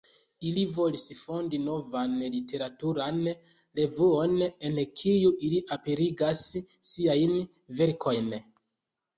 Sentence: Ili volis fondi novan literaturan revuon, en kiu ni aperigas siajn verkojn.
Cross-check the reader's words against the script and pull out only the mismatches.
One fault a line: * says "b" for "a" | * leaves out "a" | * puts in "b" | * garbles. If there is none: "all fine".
* says "ili" for "ni"